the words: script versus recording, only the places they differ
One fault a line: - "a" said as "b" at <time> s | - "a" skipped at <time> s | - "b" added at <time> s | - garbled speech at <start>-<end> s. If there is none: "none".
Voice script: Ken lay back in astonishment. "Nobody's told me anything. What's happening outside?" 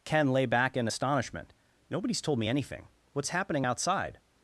none